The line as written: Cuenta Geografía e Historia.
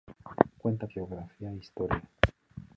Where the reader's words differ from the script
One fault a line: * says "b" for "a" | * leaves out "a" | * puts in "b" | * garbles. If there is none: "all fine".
all fine